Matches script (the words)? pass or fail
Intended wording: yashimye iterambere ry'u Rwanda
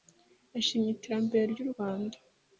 pass